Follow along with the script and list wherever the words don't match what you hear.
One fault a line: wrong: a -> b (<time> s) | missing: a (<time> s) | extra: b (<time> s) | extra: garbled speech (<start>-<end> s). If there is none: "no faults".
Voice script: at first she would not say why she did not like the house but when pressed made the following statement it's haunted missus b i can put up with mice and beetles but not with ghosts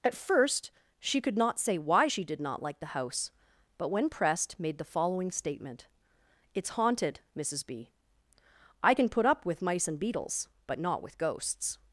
wrong: would -> could (1.2 s)